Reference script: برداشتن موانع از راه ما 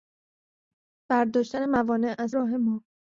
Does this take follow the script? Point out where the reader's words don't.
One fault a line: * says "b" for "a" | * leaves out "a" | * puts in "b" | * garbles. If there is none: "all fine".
all fine